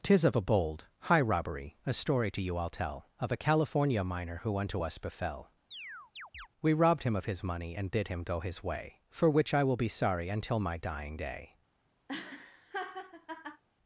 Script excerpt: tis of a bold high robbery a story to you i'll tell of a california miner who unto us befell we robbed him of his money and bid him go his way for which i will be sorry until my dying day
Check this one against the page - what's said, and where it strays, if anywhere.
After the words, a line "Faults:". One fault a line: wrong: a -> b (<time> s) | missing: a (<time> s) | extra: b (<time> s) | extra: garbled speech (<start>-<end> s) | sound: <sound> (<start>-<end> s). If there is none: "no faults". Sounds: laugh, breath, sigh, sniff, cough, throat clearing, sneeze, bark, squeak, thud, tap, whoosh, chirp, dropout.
tis of a bold high robbery a story to you i'll tell of a california miner who unto us befell we robbed him of his money and bid him go his way for which i will be sorry until my dying day
Faults:
sound: chirp (5.7-6.5 s)
sound: laugh (12.1-13.6 s)